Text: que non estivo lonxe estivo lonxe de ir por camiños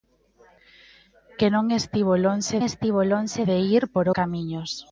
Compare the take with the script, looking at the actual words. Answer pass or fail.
pass